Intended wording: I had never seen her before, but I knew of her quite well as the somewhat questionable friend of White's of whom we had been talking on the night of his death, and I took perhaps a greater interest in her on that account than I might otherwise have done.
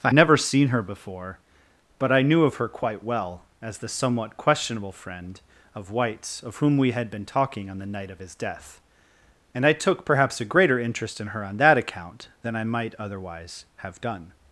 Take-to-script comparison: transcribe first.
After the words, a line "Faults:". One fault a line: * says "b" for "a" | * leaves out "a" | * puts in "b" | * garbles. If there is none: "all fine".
I never seen her before, but I knew of her quite well as the somewhat questionable friend of White's of whom we had been talking on the night of his death, and I took perhaps a greater interest in her on that account than I might otherwise have done.
Faults:
* leaves out "had"